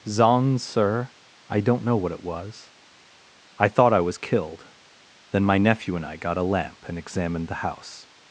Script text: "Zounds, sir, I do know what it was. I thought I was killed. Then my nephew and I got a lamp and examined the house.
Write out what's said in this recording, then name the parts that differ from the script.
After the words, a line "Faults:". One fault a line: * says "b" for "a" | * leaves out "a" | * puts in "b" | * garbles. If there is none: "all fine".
"Zounds, sir, I don't know what it was. I thought I was killed. Then my nephew and I got a lamp and examined the house.
Faults:
* says "don't" for "do"